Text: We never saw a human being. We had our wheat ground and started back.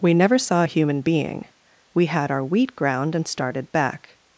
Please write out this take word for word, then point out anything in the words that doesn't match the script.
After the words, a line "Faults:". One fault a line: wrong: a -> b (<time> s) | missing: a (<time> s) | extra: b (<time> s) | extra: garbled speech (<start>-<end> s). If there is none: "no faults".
We never saw a human being. We had our wheat ground and started back.
Faults:
no faults